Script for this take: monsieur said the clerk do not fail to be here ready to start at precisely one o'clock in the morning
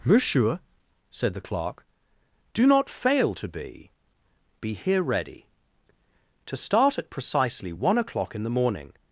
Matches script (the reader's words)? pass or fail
fail